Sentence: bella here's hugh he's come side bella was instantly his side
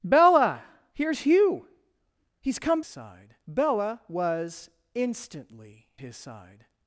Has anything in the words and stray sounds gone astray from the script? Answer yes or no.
no